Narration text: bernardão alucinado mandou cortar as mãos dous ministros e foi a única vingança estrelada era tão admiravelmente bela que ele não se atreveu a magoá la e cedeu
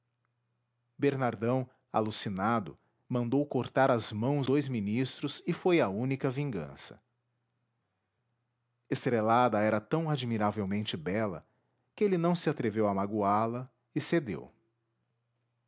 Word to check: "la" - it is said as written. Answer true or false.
true